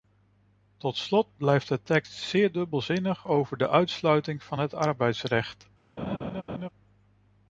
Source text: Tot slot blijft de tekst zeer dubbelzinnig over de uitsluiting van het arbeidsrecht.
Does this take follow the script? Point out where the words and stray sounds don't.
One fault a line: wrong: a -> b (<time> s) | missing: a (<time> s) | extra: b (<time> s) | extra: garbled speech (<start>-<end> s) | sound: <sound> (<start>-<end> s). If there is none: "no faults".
sound: laugh (6.0-6.7 s)